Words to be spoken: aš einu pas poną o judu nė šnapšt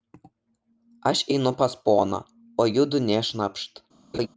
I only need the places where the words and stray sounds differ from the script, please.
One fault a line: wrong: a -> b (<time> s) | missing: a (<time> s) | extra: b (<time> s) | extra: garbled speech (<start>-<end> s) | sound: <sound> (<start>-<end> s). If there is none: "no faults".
sound: laugh (4.1-4.3 s)